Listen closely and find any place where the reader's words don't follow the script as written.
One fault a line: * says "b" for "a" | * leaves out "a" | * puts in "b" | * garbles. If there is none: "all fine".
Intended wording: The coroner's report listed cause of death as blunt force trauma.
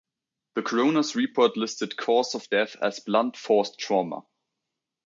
all fine